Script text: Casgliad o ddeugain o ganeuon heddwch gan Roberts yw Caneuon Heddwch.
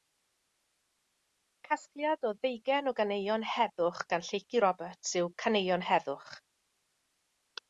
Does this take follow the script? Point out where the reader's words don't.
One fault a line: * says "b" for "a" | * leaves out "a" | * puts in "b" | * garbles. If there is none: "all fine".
* puts in "Lleucu"